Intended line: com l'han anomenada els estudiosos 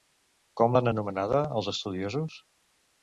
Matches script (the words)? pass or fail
pass